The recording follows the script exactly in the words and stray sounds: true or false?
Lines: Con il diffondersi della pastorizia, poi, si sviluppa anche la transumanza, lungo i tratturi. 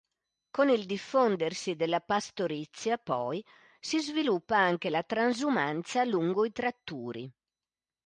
true